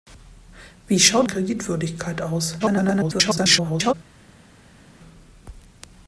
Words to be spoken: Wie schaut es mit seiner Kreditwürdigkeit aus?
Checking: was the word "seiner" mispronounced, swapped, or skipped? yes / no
yes